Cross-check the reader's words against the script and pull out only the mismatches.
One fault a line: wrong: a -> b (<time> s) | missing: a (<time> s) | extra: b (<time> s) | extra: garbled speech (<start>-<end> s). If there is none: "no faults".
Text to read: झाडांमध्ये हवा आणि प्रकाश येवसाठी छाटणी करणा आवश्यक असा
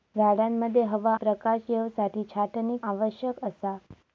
missing: आणि (1.1 s)
missing: करणा (2.8 s)